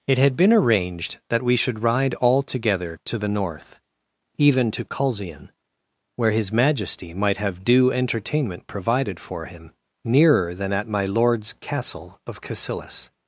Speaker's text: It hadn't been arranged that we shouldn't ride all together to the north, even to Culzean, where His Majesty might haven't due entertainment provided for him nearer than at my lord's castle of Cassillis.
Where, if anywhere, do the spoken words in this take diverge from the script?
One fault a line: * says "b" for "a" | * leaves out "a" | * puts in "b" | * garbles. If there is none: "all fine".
* says "had" for "hadn't"
* says "should" for "shouldn't"
* says "have" for "haven't"